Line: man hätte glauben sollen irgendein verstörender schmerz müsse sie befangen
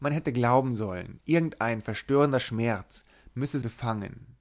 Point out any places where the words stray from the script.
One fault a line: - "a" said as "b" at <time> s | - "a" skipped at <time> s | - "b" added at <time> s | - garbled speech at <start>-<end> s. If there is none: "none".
- "sie" skipped at 3.6 s